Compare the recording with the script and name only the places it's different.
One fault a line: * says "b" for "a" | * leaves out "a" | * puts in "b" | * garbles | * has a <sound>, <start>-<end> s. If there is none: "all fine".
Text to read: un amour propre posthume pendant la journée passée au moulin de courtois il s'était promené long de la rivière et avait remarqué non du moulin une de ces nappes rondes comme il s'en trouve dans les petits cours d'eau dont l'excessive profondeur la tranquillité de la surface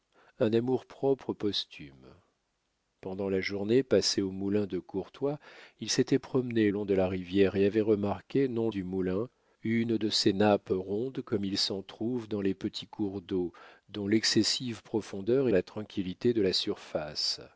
all fine